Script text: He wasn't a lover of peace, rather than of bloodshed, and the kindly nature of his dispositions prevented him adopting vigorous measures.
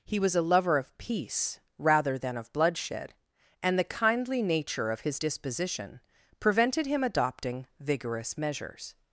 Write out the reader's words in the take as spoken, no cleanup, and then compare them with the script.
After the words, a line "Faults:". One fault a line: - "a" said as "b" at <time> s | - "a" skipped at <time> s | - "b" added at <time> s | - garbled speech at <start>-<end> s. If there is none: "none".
He was a lover of peace, rather than of bloodshed, and the kindly nature of his disposition prevented him adopting vigorous measures.
Faults:
- "wasn't" said as "was" at 0.2 s
- "dispositions" said as "disposition" at 5.2 s